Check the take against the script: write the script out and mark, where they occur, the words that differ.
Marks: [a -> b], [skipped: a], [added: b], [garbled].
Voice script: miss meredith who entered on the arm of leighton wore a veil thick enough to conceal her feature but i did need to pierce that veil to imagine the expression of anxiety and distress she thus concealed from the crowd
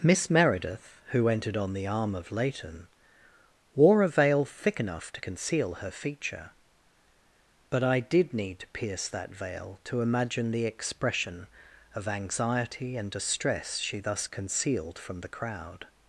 miss meredith who entered on the arm of leighton wore a veil thick enough to conceal her feature but i did need to pierce that veil to imagine the expression of anxiety and distress she thus concealed from the crowd